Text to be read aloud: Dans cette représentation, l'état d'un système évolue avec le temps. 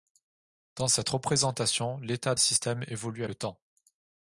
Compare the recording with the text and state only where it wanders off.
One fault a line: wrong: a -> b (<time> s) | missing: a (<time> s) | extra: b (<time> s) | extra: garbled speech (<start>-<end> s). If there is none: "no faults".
missing: d'un (2.4 s)
missing: avec (3.2 s)